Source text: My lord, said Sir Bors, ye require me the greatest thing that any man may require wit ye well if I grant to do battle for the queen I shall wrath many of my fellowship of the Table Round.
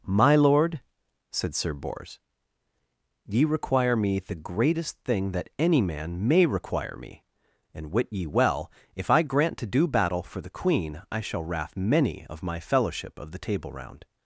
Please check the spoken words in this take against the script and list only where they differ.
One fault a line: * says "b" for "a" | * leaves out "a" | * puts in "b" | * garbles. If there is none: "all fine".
* puts in "me and"